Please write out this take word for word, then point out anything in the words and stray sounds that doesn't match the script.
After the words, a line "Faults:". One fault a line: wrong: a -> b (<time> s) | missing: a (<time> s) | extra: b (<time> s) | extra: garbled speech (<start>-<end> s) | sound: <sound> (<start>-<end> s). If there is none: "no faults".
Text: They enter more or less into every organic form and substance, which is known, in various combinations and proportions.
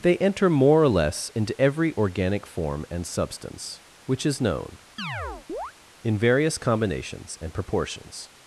They enter more or less into every organic form and substance, which is known, in various combinations and proportions.
Faults:
sound: chirp (5.0-5.7 s)